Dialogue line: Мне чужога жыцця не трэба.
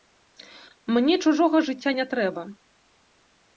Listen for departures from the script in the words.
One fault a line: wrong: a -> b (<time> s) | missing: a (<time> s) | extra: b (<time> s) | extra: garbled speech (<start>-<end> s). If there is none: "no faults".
no faults